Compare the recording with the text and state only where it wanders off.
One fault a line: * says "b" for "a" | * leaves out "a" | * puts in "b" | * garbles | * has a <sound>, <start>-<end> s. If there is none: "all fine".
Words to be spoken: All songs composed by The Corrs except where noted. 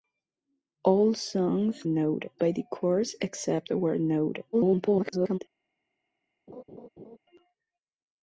* says "noted" for "composed"
* garbles
* has a laugh, 6.5-7.2 s